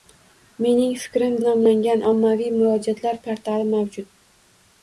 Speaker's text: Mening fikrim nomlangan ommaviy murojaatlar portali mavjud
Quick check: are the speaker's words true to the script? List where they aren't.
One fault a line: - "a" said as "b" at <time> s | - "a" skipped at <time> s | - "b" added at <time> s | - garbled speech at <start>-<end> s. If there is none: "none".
none